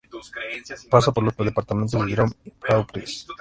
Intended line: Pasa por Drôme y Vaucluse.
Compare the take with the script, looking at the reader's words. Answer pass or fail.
fail